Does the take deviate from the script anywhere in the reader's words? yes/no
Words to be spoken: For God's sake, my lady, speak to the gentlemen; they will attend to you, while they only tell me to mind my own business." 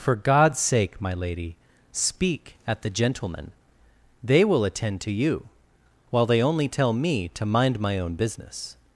yes